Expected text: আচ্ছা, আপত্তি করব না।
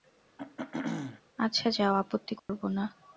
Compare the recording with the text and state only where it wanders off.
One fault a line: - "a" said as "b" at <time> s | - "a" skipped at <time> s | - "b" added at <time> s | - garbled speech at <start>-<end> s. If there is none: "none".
- "যাও" added at 1.7 s